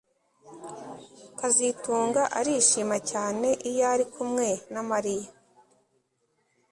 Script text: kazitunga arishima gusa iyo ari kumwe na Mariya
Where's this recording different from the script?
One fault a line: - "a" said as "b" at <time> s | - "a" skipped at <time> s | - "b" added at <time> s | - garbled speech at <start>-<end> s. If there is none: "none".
- "gusa" said as "cyane" at 3.1 s